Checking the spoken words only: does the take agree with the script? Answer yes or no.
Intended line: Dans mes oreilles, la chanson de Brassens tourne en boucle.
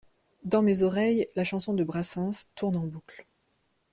yes